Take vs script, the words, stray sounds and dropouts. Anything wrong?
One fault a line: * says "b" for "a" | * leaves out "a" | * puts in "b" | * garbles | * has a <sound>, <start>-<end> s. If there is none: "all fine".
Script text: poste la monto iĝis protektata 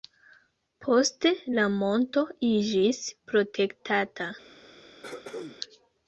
* has a throat clearing, 5.0-5.6 s